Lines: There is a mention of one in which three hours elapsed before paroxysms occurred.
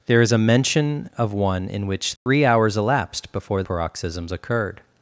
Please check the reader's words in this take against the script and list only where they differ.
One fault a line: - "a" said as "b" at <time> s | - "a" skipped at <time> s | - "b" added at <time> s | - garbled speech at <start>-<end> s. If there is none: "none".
none